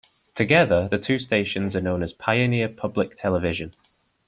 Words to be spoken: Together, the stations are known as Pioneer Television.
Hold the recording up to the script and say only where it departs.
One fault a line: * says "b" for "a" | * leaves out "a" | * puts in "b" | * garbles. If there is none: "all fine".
* puts in "two"
* puts in "Public"